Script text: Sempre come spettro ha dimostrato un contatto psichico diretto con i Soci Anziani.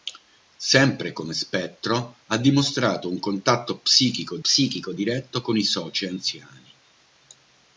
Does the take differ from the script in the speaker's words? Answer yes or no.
yes